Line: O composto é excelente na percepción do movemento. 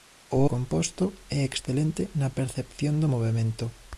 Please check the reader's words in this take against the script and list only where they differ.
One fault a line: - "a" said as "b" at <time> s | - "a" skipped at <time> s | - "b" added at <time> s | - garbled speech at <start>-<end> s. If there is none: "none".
none